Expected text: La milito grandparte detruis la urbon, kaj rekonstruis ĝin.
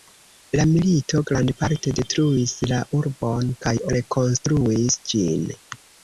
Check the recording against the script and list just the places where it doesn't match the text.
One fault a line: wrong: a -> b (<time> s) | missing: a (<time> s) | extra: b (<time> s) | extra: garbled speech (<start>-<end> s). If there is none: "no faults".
no faults